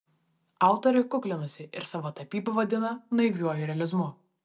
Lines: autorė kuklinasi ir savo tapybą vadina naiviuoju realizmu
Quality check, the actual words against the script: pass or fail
pass